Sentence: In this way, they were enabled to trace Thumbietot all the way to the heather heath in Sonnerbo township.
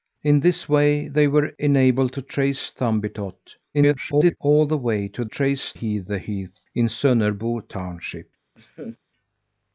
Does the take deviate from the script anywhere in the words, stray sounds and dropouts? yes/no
yes